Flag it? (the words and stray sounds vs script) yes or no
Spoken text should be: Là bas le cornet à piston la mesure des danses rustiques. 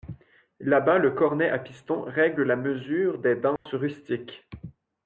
yes